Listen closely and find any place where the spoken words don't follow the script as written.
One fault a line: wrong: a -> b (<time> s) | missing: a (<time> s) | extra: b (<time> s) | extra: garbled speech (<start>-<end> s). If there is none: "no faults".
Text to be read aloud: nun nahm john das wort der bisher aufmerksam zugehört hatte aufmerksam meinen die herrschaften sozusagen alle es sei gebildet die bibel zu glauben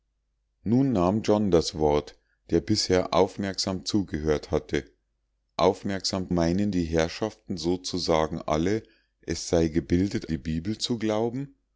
no faults